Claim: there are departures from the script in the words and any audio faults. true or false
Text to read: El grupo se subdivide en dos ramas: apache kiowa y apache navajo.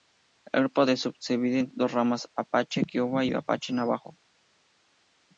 false